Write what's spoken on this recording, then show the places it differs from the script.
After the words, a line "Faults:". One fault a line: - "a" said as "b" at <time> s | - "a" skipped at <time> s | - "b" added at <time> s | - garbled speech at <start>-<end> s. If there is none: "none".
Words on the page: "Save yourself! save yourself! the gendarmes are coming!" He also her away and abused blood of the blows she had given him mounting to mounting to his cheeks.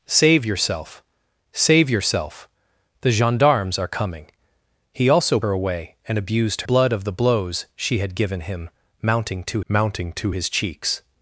"Save yourself! save yourself! the gendarmes are coming!" He also her away and abused blood of the blows she had given him mounting to mounting to his cheeks.
Faults:
none